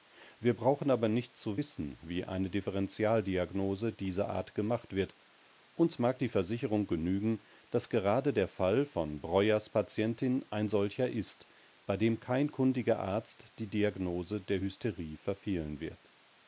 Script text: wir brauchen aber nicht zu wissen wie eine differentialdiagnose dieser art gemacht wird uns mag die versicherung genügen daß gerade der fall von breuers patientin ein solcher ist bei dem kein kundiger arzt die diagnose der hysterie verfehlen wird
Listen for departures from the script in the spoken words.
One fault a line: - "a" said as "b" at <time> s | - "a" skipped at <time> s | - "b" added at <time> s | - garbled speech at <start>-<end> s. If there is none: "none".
none